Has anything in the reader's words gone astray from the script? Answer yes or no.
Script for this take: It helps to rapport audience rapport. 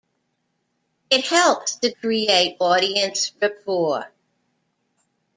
yes